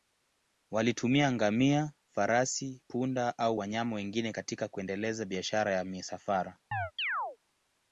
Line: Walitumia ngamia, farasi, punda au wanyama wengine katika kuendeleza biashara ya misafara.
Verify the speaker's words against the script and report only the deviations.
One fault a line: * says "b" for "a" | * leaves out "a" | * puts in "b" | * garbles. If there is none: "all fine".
all fine